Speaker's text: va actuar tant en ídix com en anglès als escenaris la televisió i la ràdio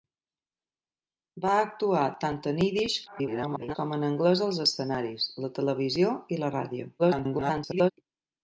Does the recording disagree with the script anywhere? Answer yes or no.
yes